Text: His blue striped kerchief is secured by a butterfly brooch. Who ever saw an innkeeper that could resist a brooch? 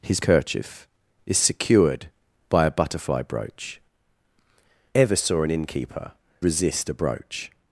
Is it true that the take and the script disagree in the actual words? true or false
true